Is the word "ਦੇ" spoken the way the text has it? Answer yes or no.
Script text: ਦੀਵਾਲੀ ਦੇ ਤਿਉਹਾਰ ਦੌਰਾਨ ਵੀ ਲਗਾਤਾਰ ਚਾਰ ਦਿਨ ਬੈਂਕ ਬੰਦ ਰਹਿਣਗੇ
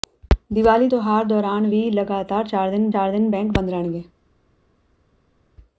no